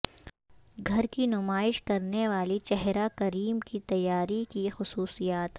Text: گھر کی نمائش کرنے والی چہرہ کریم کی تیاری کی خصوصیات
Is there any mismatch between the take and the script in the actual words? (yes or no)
no